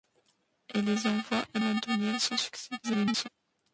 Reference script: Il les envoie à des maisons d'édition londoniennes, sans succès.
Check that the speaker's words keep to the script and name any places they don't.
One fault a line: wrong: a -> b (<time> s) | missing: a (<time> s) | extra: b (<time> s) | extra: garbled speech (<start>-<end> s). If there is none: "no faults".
missing: des maisons d'édition (1.6 s)
extra: garbled speech (2.8-3.3 s)